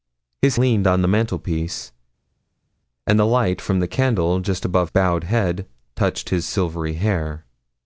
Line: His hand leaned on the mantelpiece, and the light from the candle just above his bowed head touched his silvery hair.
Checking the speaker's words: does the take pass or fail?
fail